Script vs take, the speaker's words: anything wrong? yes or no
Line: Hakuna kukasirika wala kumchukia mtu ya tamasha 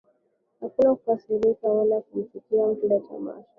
no